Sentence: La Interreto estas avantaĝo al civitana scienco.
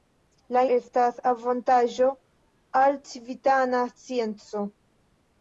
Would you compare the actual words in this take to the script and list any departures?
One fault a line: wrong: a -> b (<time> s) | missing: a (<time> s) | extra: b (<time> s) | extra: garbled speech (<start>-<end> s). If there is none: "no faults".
missing: Interreto (0.6 s)